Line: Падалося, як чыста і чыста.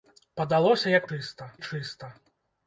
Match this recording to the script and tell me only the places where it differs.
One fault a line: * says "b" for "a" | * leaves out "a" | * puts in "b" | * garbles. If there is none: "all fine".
all fine